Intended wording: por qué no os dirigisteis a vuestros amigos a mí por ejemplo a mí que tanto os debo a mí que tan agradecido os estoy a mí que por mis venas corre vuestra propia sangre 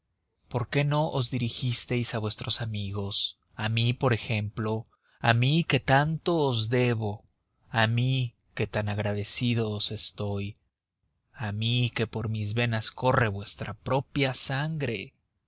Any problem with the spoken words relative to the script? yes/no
no